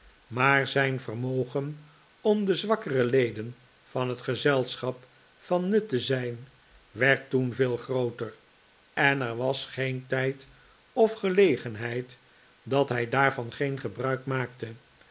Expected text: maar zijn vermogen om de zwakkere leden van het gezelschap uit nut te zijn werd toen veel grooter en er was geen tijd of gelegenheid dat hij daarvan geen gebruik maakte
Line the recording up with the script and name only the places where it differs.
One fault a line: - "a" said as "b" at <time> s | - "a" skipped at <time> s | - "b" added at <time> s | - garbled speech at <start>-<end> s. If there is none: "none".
- "uit" said as "van" at 5.4 s